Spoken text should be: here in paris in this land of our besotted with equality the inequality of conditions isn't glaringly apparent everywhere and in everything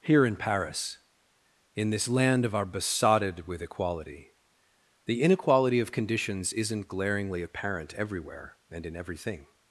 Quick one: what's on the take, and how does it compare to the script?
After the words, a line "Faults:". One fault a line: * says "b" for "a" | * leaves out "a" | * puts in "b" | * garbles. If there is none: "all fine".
here in paris in this land of our besotted with equality the inequality of conditions isn't glaringly apparent everywhere and in everything
Faults:
all fine